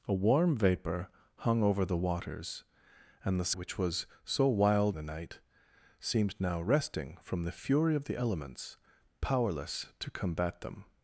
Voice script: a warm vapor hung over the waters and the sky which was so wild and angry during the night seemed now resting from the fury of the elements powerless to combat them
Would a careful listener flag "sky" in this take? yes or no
yes